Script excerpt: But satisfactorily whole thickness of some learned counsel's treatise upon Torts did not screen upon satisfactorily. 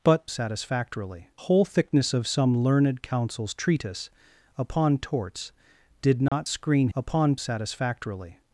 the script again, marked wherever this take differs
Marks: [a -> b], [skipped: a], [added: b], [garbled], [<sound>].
But satisfactorily whole thickness of some learned counsel's treatise upon Torts did not [dropout] screen upon satisfactorily.